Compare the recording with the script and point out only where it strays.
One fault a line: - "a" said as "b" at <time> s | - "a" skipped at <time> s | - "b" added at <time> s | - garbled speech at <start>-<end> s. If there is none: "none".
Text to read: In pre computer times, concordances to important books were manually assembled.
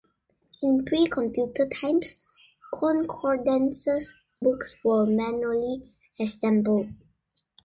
- "to important" skipped at 4.2 s